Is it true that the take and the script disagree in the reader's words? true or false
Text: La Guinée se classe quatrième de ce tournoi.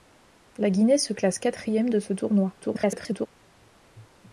true